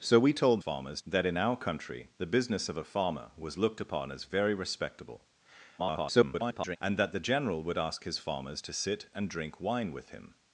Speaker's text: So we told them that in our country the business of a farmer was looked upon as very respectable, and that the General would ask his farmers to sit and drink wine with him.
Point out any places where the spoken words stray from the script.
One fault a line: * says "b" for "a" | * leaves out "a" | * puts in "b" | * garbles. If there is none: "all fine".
* says "farmers" for "them"
* garbles